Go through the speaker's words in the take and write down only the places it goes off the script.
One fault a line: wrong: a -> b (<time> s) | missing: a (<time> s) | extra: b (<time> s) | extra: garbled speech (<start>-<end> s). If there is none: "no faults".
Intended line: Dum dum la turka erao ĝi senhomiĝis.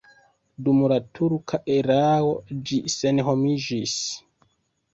missing: dum (0.8 s)